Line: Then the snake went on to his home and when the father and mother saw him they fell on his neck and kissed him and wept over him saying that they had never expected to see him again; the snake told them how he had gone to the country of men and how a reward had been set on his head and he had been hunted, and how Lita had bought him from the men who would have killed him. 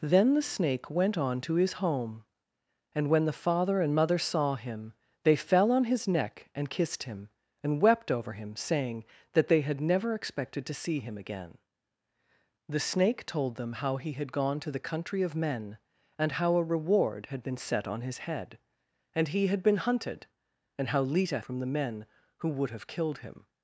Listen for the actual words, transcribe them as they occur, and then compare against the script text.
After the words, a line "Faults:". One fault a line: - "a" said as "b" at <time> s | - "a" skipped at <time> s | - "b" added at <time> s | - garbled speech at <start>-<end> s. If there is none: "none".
Then the snake went on to his home and when the father and mother saw him they fell on his neck and kissed him and wept over him saying that they had never expected to see him again; the snake told them how he had gone to the country of men and how a reward had been set on his head and he had been hunted, and how Lita from the men who would have killed him.
Faults:
- "had bought him" skipped at 21.4 s